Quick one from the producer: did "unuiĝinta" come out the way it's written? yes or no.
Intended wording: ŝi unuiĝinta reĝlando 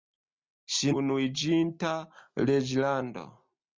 yes